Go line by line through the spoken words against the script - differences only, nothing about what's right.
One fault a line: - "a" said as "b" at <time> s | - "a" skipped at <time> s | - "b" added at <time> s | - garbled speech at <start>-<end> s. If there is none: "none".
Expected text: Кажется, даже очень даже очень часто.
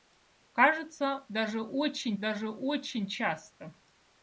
none